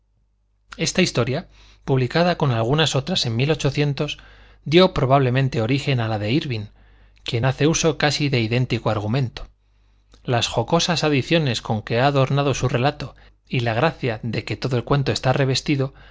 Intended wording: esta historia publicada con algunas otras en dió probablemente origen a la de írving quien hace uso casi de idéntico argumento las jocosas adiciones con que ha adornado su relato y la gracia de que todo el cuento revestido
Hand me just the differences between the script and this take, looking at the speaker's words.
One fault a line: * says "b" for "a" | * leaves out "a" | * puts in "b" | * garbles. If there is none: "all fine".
* puts in "está"